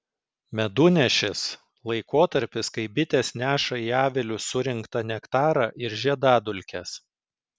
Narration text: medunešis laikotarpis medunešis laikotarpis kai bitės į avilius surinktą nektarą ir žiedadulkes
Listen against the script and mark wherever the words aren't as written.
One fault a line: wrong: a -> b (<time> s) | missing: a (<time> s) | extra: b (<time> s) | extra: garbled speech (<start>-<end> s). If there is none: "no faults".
missing: medunešis laikotarpis (2.7 s)
extra: neša (3.4 s)